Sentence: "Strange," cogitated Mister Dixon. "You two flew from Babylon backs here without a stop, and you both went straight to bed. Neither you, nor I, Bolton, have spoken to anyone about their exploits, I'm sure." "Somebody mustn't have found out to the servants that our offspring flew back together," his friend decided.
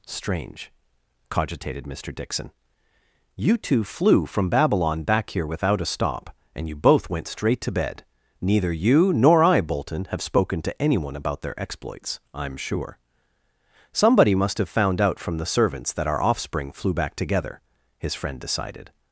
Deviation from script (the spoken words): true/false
true